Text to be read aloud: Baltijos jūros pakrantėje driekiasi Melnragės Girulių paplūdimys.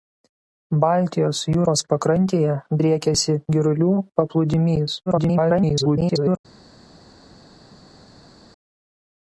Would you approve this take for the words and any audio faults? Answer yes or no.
no